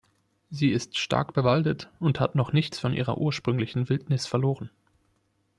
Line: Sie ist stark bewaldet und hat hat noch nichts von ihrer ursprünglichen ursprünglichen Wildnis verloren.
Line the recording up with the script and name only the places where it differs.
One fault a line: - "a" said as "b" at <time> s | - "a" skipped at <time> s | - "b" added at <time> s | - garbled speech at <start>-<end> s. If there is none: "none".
- "hat" skipped at 2.3 s
- "ursprünglichen" skipped at 3.9 s